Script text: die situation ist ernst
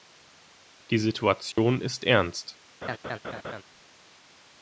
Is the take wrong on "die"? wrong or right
right